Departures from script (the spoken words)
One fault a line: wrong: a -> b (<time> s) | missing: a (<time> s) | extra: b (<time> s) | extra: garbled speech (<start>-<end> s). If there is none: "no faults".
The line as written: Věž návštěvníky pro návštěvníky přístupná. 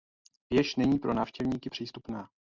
wrong: návštěvníky -> není (0.8 s)